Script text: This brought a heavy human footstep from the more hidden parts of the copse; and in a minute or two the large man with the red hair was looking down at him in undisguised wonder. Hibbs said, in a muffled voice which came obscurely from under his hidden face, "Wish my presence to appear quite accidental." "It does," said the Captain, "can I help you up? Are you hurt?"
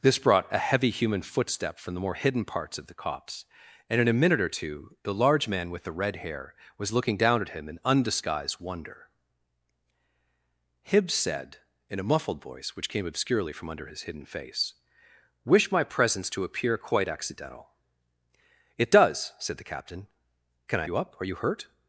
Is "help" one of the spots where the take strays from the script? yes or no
yes